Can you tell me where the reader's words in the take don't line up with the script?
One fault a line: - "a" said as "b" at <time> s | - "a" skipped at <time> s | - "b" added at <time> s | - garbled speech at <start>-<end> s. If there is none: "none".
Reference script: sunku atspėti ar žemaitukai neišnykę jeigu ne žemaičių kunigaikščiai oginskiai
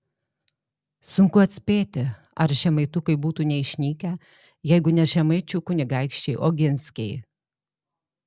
- "būtų" added at 3.2 s